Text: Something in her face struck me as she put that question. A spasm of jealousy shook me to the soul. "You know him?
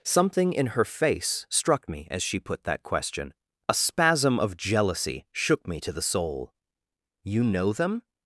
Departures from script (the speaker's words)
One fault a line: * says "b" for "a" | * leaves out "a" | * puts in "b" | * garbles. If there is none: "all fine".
* says "them" for "him"